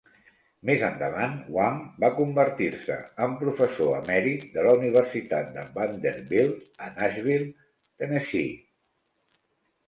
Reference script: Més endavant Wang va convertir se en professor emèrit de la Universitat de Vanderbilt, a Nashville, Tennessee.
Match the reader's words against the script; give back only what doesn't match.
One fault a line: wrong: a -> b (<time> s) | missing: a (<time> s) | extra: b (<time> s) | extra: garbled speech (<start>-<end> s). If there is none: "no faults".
no faults